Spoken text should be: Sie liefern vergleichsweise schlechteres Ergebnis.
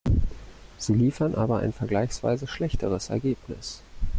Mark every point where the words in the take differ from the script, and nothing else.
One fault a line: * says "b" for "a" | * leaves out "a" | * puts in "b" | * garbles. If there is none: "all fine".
* puts in "aber ein"